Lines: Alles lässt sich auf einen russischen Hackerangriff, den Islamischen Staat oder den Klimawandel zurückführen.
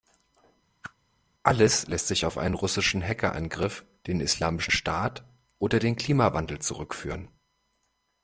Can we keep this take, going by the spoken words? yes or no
yes